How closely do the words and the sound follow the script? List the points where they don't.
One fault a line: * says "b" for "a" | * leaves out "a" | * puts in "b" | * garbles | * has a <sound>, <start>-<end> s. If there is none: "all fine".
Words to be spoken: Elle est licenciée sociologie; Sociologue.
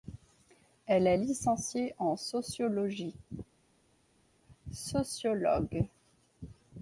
* puts in "en"